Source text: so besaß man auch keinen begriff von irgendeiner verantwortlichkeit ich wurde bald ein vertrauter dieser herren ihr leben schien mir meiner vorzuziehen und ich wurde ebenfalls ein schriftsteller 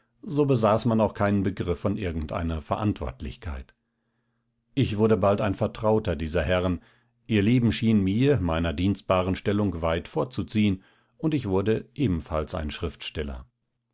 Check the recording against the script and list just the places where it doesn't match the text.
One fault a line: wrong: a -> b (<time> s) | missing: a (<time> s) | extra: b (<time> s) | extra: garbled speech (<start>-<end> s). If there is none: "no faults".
extra: dienstbaren stellung weit (8.7 s)